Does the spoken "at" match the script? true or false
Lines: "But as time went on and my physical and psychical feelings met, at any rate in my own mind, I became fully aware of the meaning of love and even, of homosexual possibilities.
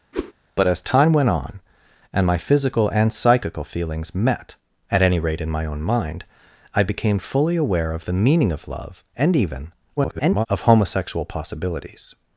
true